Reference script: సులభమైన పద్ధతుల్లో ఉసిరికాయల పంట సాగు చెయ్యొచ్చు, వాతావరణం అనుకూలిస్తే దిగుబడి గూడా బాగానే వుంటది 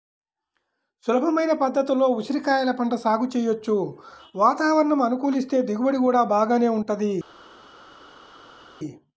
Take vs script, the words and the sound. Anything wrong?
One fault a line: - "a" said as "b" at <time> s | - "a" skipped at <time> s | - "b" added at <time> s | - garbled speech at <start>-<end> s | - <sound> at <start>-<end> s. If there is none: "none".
none